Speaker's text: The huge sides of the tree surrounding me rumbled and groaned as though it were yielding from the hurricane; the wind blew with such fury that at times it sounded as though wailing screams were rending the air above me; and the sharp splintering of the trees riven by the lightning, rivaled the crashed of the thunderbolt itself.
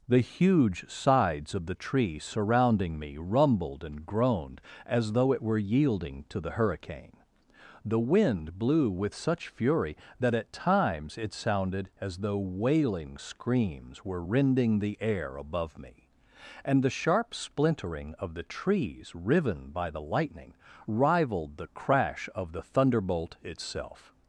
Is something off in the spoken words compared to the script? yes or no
yes